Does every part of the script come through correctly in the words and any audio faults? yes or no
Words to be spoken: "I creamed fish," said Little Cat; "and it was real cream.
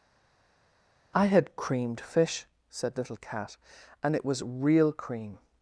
no